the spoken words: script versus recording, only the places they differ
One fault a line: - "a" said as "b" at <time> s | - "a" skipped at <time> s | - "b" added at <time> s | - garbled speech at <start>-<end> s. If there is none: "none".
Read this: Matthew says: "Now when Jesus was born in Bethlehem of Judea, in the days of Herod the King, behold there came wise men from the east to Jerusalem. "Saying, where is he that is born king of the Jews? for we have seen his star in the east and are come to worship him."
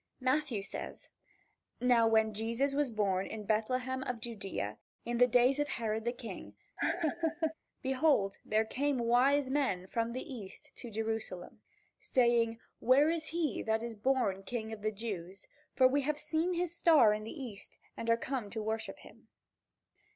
none